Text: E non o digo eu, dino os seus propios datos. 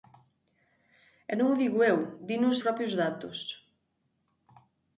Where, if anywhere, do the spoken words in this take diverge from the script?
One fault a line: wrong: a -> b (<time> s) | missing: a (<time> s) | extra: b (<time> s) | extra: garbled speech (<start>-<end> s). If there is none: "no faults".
missing: seus (2.6 s)